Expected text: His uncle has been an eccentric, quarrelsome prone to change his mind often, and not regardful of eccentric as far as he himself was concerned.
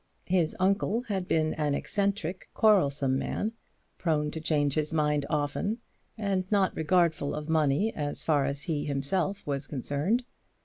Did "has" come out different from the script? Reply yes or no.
yes